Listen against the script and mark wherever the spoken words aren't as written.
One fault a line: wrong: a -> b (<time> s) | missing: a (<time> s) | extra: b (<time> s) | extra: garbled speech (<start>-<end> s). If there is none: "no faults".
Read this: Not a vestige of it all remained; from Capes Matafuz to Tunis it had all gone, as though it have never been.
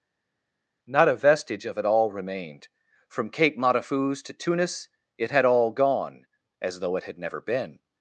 wrong: Capes -> Cape (3.3 s)
wrong: have -> had (7.0 s)